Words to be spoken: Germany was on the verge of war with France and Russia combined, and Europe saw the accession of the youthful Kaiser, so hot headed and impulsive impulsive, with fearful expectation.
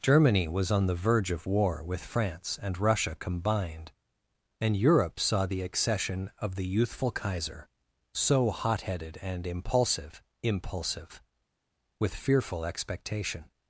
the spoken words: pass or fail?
pass